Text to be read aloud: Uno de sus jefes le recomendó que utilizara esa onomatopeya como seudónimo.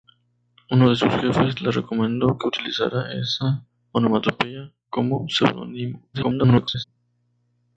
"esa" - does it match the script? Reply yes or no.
yes